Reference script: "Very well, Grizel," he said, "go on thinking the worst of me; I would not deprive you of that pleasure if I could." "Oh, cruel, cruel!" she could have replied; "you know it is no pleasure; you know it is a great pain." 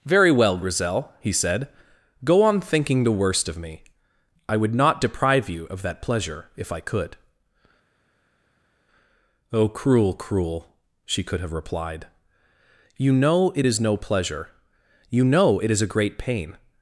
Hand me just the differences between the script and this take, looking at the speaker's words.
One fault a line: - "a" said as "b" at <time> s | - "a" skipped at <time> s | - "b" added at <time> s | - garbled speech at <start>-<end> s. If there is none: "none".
none